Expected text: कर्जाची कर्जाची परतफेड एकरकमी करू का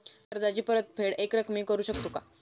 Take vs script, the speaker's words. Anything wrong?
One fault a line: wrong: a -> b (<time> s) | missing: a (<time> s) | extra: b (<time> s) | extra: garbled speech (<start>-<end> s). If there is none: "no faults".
missing: कर्जाची (0.6 s)
extra: शकतो (1.8 s)